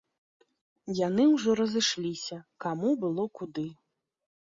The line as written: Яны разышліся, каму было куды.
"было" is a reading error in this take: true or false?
false